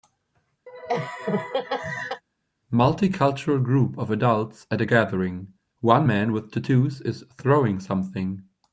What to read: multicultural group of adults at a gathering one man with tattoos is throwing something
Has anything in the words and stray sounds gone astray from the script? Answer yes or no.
yes